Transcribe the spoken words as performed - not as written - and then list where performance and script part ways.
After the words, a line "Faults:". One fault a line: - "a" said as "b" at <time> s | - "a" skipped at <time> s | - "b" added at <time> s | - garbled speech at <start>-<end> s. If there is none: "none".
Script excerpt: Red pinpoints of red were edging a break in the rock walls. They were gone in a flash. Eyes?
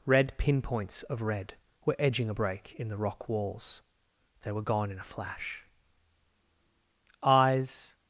Red pinpoints of red were edging a break in the rock walls. They were gone in a flash. Eyes?
Faults:
none